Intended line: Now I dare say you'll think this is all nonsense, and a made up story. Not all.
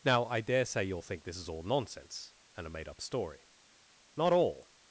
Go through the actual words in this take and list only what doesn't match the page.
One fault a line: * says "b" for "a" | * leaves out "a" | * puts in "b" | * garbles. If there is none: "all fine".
all fine